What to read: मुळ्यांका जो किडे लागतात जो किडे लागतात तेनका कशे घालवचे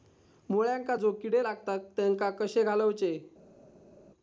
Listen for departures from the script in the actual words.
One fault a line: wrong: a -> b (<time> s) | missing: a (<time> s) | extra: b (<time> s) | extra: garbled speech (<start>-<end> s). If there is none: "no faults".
missing: जो किडे लागतात (1.8 s)